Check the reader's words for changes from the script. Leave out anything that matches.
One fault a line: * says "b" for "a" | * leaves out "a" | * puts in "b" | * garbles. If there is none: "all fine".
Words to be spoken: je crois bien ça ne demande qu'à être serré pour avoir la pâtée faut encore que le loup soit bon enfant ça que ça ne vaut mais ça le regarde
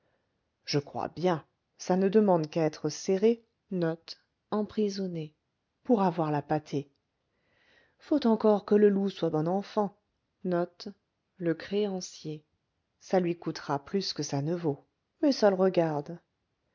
* puts in "lui coûtera plus"